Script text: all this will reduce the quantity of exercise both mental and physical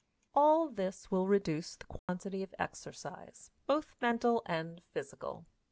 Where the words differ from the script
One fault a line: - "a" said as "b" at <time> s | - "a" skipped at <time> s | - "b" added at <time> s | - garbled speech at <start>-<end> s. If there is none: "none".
none